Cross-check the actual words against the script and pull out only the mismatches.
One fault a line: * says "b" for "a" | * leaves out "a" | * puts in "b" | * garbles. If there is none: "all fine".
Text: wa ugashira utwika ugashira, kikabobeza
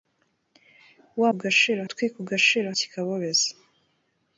all fine